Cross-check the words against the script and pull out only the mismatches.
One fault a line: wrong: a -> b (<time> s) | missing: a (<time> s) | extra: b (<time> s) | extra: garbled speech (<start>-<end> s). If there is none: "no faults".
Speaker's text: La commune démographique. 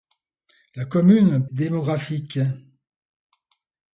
no faults